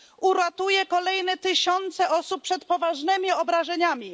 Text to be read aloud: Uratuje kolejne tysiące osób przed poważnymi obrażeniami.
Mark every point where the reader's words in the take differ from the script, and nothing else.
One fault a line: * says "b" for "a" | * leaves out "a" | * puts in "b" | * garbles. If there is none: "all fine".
all fine